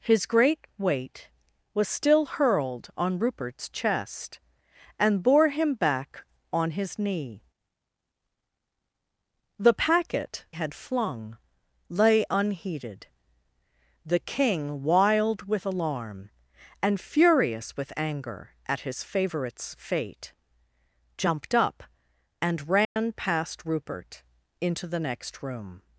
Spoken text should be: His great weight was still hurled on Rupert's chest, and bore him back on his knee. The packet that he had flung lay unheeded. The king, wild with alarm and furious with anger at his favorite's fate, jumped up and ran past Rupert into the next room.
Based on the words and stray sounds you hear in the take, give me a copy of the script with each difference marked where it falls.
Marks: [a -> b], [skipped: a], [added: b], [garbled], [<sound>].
His great weight was still hurled on Rupert's chest, and bore him back on his knee. The packet [skipped: that he] had flung lay unheeded. The king, wild with alarm and furious with anger at his favorite's fate, jumped up and ran [dropout] past Rupert into the next room.